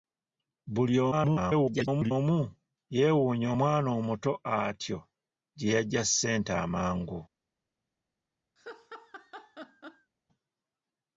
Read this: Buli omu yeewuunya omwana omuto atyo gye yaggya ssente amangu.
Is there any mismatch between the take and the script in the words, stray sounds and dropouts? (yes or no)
yes